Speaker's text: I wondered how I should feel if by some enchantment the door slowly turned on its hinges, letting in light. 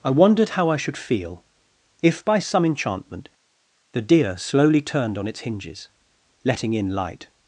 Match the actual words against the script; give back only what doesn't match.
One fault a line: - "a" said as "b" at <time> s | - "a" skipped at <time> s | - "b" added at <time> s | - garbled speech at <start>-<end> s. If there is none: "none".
- "door" said as "deer" at 4.0 s